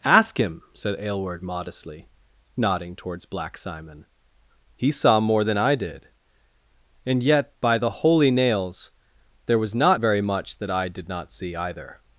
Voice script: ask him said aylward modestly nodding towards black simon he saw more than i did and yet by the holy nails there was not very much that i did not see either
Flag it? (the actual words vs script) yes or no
no